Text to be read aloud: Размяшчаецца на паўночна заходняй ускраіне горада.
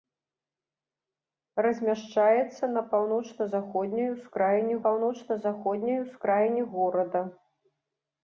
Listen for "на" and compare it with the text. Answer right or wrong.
right